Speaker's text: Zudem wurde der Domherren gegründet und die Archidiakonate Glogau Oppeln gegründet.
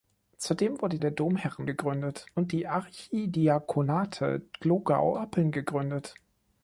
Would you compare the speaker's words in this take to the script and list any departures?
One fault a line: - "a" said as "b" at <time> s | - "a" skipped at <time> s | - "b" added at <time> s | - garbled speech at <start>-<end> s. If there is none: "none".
none